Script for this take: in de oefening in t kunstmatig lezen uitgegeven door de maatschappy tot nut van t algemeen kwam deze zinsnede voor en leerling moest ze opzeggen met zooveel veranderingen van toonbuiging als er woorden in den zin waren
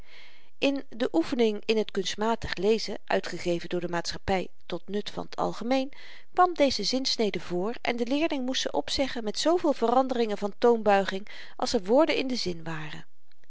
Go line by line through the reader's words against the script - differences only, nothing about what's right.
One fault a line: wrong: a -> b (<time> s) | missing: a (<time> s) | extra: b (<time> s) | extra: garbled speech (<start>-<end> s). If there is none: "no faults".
extra: de (8.0 s)